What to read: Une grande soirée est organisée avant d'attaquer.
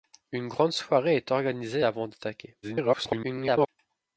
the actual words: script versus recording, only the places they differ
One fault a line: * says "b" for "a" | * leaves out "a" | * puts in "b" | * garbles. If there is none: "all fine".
* garbles